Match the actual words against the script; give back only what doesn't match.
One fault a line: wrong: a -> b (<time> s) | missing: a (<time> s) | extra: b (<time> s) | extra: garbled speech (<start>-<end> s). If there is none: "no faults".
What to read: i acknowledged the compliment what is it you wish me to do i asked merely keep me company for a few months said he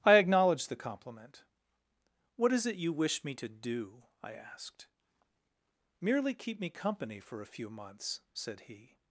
no faults